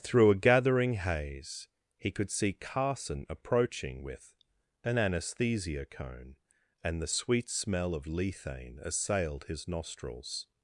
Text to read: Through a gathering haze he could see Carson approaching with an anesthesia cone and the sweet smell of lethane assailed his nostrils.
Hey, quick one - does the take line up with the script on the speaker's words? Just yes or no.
yes